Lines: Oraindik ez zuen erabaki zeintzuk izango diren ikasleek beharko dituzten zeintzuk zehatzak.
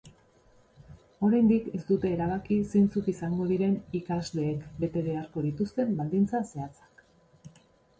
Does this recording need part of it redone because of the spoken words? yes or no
yes